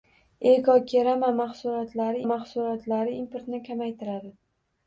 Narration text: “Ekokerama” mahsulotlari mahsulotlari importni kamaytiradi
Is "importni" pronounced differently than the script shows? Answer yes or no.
no